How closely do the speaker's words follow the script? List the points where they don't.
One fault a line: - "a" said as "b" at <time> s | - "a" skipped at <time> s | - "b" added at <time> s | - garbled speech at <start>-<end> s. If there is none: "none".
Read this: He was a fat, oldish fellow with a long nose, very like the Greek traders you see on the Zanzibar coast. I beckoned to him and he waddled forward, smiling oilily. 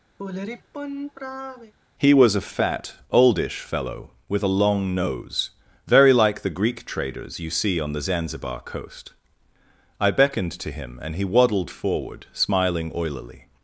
none